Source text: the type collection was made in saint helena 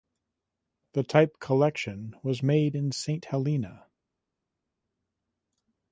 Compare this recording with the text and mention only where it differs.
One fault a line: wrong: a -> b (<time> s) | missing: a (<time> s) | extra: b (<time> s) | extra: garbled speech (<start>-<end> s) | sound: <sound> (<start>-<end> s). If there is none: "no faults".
no faults